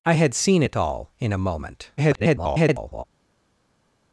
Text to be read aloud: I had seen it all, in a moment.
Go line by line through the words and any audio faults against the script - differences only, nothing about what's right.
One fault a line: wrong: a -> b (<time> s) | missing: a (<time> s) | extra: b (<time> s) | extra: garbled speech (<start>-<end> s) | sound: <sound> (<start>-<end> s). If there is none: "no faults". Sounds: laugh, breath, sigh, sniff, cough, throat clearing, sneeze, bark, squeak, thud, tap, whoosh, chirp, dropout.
extra: garbled speech (2.0-3.0 s)